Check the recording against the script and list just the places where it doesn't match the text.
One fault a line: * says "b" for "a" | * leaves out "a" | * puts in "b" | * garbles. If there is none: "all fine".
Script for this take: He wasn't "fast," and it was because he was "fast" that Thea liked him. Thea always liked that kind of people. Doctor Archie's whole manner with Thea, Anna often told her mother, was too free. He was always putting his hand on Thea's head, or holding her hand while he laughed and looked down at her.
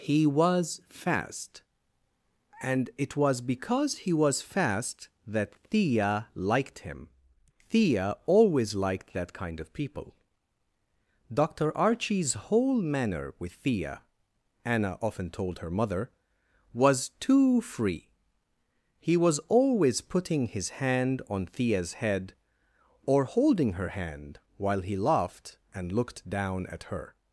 * says "was" for "wasn't"